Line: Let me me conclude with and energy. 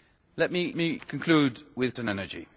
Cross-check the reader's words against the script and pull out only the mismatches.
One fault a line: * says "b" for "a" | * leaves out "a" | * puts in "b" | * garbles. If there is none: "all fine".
all fine